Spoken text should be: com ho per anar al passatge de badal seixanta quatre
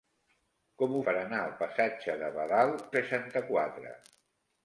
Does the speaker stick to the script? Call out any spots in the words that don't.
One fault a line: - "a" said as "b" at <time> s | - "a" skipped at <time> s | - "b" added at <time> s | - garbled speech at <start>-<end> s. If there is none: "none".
none